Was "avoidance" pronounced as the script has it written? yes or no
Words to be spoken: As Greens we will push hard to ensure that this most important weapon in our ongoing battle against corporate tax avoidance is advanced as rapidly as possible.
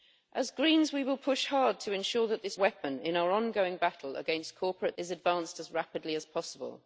no